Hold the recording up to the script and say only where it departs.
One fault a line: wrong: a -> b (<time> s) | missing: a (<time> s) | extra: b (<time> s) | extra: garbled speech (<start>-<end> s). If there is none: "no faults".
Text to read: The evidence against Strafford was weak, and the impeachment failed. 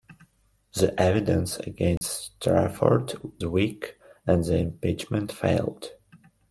missing: was (3.1 s)